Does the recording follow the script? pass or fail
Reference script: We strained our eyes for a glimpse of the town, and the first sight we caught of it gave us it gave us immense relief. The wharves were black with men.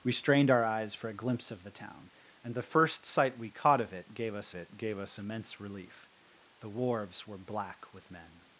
pass